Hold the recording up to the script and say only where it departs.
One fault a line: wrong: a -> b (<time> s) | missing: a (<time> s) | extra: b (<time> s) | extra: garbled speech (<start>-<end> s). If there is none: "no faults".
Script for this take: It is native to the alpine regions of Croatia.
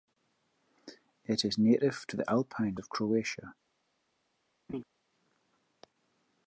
missing: regions (2.8 s)